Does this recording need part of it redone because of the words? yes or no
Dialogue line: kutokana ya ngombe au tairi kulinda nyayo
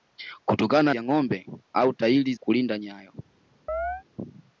no